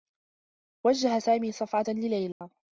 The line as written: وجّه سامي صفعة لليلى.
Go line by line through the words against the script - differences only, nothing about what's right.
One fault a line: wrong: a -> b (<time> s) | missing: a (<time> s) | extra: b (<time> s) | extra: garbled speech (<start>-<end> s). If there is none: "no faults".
no faults